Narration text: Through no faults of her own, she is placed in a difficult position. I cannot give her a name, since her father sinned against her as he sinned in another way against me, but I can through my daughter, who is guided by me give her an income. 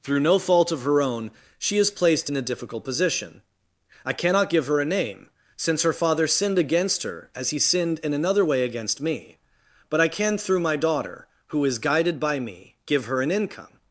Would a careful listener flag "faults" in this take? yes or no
yes